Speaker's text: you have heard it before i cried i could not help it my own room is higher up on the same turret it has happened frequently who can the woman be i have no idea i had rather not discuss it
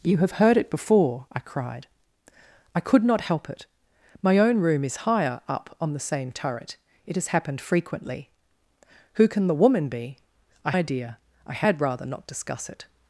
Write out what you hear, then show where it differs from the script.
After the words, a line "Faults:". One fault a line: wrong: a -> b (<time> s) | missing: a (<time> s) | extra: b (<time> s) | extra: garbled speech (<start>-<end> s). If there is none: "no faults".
you have heard it before i cried i could not help it my own room is higher up on the same turret it has happened frequently who can the woman be i idea i had rather not discuss it
Faults:
missing: have no (10.7 s)